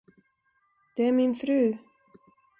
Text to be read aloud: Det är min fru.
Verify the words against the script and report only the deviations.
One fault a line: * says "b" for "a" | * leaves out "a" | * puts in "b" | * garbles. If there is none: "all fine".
all fine